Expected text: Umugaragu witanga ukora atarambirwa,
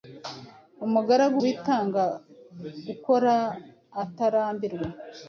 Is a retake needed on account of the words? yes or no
no